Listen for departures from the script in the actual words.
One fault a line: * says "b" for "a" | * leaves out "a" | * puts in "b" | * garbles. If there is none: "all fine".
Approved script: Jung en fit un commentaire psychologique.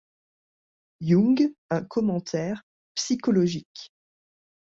* leaves out "en fit"